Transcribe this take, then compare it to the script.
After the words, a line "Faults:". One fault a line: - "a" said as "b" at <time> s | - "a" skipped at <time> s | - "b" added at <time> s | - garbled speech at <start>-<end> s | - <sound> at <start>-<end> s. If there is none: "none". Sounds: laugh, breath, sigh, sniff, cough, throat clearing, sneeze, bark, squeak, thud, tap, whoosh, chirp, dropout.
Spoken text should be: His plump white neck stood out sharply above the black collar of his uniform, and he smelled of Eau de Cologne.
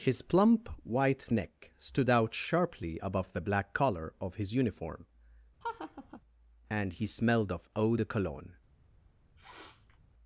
His plump white neck stood out sharply above the black collar of his uniform, and he smelled of Eau de Cologne.
Faults:
- laugh at 5.6-6.2 s
- sniff at 9.4-10.0 s